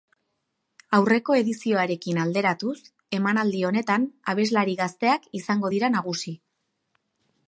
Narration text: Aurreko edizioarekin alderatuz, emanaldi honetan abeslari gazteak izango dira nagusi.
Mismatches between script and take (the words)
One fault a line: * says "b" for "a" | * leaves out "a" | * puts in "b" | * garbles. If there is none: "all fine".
all fine